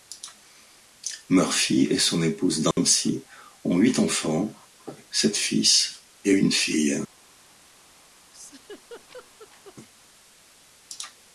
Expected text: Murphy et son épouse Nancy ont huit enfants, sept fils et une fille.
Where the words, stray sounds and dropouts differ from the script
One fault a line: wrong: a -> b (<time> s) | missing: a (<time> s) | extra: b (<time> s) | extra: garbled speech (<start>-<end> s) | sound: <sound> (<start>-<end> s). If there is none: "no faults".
sound: dropout (2.7-2.8 s)
sound: laugh (8.3-9.8 s)